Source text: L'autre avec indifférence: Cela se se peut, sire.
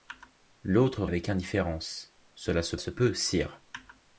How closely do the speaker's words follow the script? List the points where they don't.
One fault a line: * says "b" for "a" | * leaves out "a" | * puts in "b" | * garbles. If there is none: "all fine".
all fine